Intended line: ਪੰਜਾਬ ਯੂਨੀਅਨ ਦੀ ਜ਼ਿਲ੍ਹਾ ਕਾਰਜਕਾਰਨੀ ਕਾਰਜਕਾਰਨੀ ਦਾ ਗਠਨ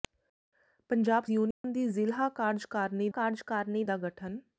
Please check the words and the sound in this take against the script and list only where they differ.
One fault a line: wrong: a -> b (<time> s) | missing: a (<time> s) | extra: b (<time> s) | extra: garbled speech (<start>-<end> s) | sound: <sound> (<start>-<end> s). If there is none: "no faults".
sound: dropout (1.5-1.6 s)